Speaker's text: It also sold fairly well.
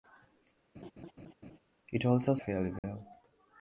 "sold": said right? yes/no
no